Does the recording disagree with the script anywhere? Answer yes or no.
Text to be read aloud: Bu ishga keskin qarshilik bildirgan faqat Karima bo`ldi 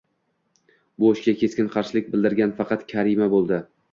no